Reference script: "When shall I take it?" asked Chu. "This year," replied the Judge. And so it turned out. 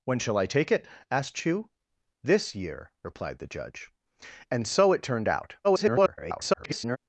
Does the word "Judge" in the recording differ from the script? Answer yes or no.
no